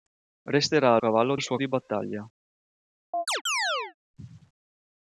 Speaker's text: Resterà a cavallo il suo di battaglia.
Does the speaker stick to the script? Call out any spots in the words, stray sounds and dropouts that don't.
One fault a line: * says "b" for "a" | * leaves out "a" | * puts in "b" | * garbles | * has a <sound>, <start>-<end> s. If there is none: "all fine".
* has a chirp, 3.1-3.9 s